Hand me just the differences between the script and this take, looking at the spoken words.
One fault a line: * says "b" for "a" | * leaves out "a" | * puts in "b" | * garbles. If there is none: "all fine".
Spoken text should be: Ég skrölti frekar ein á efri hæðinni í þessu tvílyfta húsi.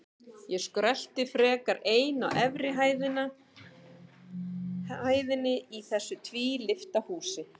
all fine